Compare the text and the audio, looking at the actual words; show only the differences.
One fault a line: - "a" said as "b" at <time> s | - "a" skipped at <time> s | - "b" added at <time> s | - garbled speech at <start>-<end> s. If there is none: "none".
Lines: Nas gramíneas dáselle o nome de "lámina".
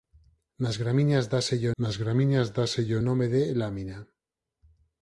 - "nas gramíneas dáselle" added at 1.8 s